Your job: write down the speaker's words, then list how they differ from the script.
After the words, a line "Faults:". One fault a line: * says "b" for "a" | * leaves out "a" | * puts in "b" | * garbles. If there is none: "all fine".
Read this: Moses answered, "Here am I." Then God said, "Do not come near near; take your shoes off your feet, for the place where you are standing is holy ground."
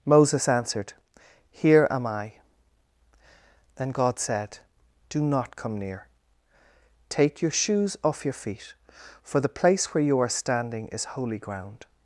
Moses answered, "Here am I." Then God said, "Do not come near; take your shoes off your feet, for the place where you are standing is holy ground."
Faults:
* leaves out "near"